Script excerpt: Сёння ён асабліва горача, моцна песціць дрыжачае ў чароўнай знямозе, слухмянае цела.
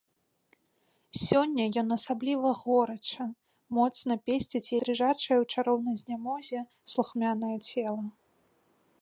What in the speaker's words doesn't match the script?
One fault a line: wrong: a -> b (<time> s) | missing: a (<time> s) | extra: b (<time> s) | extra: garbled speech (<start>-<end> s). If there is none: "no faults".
no faults